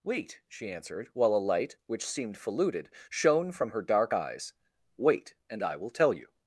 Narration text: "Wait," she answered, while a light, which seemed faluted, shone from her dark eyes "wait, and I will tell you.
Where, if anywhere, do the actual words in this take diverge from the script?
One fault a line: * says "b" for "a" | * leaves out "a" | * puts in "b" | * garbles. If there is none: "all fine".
all fine